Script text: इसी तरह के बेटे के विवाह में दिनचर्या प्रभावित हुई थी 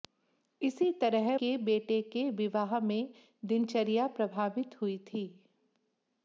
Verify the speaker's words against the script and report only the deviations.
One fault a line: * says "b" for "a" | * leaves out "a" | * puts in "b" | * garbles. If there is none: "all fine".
all fine